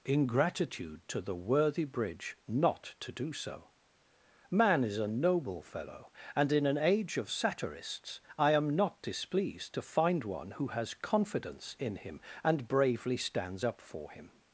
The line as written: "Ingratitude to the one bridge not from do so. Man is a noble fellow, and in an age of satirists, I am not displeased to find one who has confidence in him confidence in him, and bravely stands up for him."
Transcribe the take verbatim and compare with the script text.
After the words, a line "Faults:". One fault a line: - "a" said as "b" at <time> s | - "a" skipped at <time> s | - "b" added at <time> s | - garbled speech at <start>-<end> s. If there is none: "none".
"Ingratitude to the worthy bridge not to do so. Man is a noble fellow, and in an age of satirists, I am not displeased to find one who has confidence in him, and bravely stands up for him."
Faults:
- "one" said as "worthy" at 1.4 s
- "from" said as "to" at 3.0 s
- "confidence in him" skipped at 12.2 s